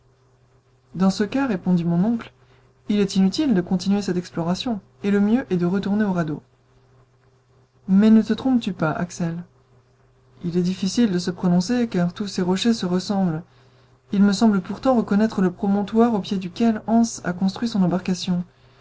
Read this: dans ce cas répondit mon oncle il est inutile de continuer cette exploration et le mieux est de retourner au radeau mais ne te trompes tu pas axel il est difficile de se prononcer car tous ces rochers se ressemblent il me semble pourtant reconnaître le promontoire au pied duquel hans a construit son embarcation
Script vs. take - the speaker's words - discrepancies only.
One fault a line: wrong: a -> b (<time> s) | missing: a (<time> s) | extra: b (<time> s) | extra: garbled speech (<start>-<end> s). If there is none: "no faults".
no faults